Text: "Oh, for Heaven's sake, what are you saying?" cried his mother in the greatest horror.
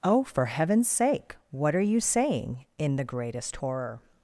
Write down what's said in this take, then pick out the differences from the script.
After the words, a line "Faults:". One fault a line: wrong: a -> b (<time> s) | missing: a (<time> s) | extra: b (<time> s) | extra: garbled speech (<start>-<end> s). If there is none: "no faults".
"Oh, for Heaven's sake, what are you saying?" in the greatest horror.
Faults:
missing: cried his mother (2.6 s)